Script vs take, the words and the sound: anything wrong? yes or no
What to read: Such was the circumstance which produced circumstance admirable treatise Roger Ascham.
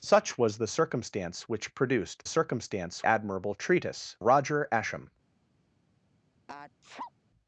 yes